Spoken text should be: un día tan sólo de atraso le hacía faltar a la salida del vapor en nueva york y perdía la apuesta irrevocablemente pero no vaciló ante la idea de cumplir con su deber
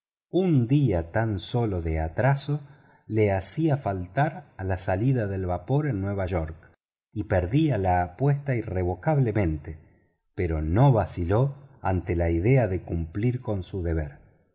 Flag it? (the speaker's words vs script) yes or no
no